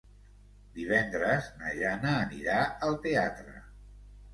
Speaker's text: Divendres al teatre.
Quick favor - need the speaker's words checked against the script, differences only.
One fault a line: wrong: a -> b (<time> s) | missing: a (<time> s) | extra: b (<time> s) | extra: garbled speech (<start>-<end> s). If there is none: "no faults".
extra: na Jana anirà (1.6 s)